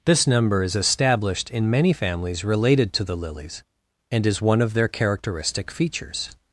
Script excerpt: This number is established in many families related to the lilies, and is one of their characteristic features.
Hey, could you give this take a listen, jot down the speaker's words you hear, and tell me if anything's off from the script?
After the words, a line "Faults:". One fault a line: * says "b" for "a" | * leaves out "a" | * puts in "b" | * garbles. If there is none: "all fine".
This number is established in many families related to the lilies, and is one of their characteristic features.
Faults:
all fine